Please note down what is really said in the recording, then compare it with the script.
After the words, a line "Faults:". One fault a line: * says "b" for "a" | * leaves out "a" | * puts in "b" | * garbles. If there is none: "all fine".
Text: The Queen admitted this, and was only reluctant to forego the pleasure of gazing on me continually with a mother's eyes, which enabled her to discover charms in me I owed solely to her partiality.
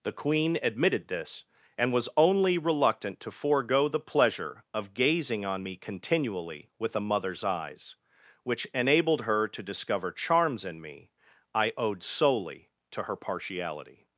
The Queen admitted this, and was only reluctant to forego the pleasure of gazing on me continually with a mother's eyes, which enabled her to discover charms in me I owed solely to her partiality.
Faults:
all fine